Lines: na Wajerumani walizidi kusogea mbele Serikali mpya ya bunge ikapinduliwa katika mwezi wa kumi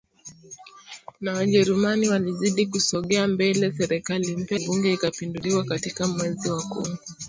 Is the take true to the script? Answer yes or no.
no